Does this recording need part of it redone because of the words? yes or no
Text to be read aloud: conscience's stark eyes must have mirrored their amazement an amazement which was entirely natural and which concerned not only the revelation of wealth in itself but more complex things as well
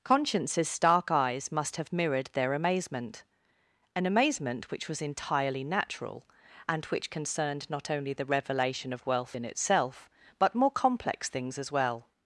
no